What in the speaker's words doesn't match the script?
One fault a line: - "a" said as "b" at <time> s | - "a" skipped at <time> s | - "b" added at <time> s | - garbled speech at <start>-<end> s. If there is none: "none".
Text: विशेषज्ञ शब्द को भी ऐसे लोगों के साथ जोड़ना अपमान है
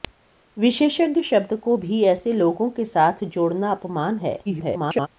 - garbled speech at 4.5-5.1 s